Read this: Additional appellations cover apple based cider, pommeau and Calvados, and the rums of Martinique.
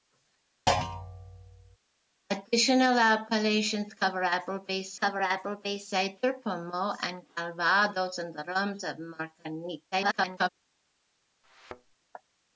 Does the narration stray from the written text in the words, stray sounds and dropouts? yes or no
yes